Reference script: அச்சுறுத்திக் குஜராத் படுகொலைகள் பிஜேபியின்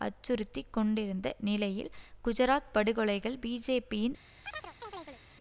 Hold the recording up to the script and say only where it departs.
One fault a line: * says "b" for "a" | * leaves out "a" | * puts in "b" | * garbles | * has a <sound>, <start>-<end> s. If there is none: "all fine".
* puts in "கொண்டிருந்த நிலையில்"
* has a chirp, 4.5-5.2 s